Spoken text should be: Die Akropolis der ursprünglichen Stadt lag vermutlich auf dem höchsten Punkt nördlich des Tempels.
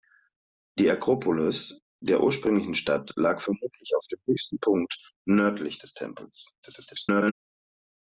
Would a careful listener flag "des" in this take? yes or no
no